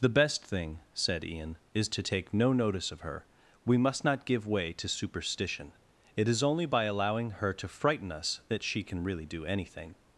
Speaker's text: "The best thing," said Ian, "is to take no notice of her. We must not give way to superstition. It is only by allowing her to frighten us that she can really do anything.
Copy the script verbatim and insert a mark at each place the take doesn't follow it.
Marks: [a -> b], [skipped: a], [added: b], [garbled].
"The best thing," said Ian, "is to take no notice of her. We must not give way to superstition. It is only by allowing her to frighten us that she can really do anything.